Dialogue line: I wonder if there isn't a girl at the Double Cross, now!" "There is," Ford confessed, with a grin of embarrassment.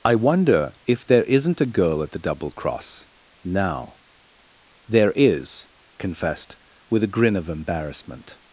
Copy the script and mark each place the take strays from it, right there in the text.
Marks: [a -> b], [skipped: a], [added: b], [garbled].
I wonder if there isn't a girl at the Double Cross, now!" "There is," [skipped: Ford] confessed, with a grin of embarrassment.